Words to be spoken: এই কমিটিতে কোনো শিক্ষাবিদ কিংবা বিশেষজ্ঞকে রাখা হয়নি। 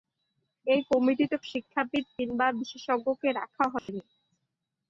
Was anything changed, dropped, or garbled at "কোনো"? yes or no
yes